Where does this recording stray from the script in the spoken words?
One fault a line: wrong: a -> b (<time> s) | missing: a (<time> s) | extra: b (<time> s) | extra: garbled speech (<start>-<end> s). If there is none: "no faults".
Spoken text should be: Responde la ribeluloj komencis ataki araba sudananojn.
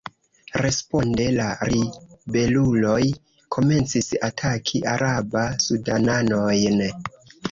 no faults